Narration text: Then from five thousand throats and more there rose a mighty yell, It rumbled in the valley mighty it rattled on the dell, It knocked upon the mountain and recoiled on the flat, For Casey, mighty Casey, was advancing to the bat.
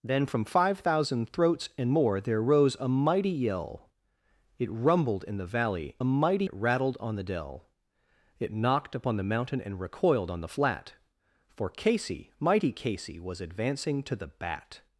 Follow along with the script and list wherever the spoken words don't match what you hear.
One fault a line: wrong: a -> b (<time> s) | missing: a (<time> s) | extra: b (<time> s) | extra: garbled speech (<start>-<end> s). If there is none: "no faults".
no faults